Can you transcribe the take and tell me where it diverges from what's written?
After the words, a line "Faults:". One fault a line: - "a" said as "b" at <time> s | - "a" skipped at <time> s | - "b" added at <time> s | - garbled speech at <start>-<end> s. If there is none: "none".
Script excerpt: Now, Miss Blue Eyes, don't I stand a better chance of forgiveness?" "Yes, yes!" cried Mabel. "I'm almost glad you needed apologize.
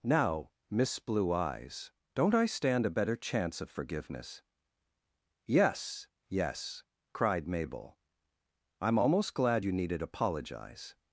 Now, Miss Blue Eyes, don't I stand a better chance of forgiveness?" "Yes, yes!" cried Mabel. "I'm almost glad you needed apologize.
Faults:
none